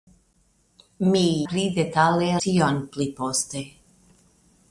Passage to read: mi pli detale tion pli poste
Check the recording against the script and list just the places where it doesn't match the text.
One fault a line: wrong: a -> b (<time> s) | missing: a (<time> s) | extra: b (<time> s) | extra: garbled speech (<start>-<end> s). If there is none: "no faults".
no faults